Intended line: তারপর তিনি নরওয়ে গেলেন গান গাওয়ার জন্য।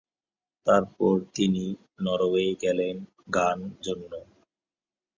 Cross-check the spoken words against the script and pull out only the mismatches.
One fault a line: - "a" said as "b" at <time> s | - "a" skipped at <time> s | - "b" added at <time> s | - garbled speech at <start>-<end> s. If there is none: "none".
- "গাওয়ার" skipped at 3.6 s